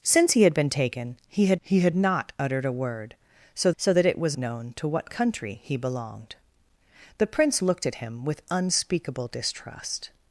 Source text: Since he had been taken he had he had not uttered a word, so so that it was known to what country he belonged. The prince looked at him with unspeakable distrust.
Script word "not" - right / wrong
right